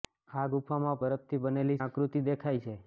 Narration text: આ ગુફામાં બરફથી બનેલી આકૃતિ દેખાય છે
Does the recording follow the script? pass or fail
pass